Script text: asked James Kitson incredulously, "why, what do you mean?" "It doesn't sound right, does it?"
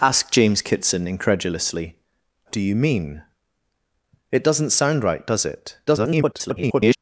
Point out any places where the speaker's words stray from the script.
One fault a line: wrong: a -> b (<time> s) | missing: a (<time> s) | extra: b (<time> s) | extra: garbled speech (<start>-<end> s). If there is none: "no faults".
missing: why what (1.9 s)
extra: garbled speech (5.9-7.0 s)